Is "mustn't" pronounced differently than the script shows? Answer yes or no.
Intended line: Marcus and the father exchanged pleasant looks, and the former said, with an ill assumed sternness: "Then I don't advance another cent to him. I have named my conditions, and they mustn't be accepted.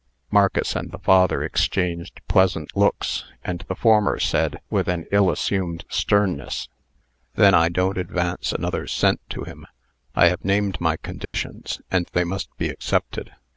yes